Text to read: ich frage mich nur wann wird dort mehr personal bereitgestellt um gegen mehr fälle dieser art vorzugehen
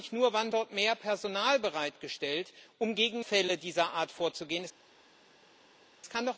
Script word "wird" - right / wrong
wrong